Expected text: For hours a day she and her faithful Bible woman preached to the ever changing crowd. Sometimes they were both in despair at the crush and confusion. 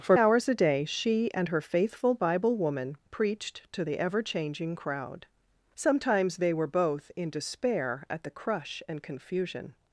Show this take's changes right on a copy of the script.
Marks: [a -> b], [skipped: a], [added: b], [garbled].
For hours a day she and her faithful Bible woman preached to the ever changing crowd. Sometimes they were both in despair at the crush and confusion.